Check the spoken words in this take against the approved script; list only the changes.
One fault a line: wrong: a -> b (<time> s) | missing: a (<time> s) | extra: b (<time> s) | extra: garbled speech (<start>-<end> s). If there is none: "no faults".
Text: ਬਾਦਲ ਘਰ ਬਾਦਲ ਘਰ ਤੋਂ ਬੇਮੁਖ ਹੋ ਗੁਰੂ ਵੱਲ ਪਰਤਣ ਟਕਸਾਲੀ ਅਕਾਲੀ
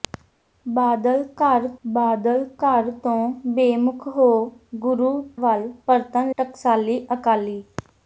no faults